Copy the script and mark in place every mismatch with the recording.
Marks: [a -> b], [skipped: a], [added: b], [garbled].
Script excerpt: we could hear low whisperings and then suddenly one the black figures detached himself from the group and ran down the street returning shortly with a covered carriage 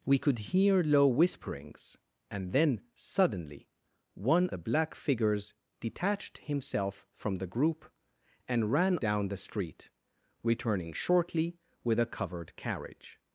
we could hear low whisperings and then suddenly one the black figures detached himself from the group and ran down the street returning shortly with a covered carriage